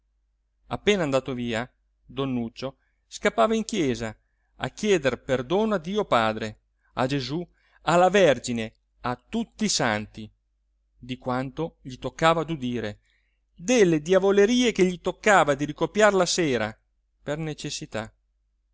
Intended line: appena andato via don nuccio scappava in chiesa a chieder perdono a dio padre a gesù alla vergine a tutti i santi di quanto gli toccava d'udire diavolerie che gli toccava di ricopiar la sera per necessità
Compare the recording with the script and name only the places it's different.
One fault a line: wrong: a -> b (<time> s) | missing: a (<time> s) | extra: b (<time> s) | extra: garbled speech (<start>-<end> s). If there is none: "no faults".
extra: delle (13.5 s)